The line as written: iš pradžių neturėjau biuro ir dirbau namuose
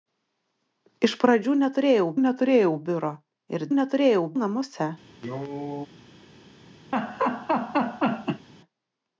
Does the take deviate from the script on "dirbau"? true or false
true